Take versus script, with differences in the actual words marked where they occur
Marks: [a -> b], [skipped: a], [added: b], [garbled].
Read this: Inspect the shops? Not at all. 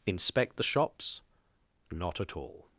Inspect the shops? Not at all.